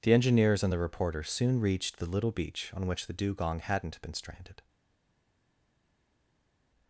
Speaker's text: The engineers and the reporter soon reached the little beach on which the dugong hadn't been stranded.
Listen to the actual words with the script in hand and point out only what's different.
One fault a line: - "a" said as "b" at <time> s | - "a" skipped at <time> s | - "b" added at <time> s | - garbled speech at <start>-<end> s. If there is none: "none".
none